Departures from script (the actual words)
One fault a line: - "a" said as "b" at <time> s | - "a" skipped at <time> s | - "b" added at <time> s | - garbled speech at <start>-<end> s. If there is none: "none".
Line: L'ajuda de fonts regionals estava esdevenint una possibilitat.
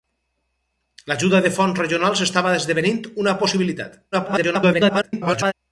- garbled speech at 4.1-5.5 s